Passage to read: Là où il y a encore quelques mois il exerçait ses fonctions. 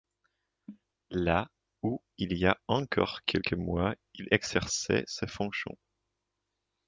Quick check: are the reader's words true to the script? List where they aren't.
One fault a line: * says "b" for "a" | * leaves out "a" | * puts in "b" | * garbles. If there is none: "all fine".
all fine